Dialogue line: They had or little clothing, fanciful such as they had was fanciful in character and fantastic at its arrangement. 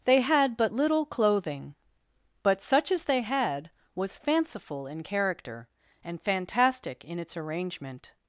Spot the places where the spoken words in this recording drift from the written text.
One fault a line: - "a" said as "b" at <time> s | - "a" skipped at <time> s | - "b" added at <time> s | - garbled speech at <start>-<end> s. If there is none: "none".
- "or" said as "but" at 0.6 s
- "fanciful" said as "but" at 2.4 s
- "at" said as "in" at 7.0 s